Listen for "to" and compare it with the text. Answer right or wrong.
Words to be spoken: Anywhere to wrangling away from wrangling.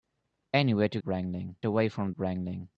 right